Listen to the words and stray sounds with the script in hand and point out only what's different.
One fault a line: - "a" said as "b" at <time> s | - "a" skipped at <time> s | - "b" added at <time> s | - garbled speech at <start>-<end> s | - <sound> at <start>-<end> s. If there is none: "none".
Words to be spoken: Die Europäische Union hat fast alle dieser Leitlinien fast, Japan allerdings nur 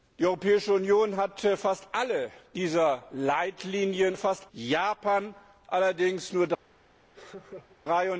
- laugh at 7.1-7.8 s